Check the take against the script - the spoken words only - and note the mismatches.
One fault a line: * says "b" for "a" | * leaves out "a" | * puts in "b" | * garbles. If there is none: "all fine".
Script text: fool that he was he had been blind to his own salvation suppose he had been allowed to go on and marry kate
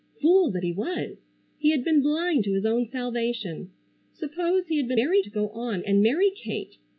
* says "marry" for "allowed"